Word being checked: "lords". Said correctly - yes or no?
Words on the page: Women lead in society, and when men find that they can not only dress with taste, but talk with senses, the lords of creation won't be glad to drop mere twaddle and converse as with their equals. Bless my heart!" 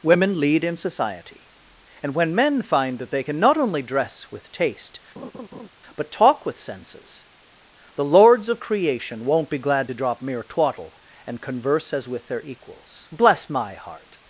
yes